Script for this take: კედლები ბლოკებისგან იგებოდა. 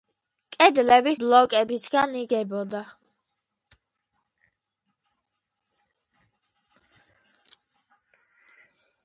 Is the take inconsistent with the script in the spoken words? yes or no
no